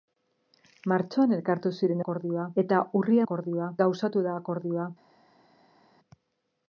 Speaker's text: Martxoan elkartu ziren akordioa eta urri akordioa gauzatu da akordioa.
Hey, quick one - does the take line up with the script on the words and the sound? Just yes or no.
yes